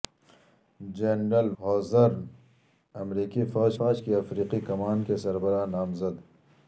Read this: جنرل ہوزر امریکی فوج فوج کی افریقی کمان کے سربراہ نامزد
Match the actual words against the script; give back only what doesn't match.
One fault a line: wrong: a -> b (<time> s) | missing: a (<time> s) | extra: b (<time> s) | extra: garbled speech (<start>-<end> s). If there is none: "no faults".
no faults